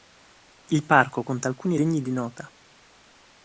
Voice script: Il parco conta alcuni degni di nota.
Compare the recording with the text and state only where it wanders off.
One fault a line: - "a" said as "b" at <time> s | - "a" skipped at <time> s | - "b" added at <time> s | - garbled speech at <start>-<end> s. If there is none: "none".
none